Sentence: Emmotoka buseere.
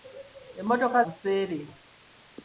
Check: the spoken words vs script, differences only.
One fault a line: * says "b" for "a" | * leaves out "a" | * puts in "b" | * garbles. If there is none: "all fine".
all fine